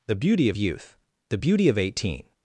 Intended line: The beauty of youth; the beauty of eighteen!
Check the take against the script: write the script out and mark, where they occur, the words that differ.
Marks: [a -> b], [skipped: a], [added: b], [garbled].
The beauty of youth; the beauty of eighteen!